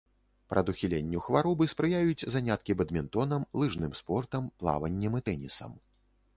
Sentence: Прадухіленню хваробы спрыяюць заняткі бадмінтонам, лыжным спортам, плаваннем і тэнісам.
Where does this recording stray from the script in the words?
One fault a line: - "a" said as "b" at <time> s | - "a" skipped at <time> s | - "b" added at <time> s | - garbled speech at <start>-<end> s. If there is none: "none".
none